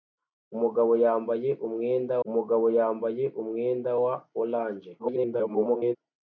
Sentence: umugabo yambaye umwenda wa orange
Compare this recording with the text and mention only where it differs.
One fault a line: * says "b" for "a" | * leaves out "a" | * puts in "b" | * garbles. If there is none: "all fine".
* puts in "umugabo yambaye umwenda"
* garbles